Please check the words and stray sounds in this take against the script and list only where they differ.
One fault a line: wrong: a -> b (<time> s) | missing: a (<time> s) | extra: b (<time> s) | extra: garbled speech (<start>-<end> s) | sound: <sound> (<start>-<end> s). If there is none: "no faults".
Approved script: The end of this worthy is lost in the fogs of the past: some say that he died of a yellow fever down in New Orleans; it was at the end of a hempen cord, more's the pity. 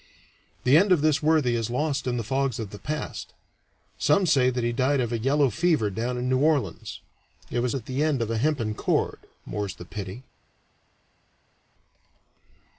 no faults